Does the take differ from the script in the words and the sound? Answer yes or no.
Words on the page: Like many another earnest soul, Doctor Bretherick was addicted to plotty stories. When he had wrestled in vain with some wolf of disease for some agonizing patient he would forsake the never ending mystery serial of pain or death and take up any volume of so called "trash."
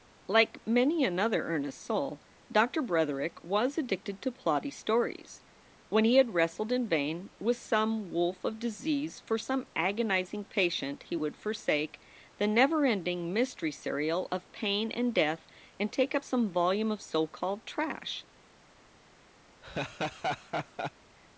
yes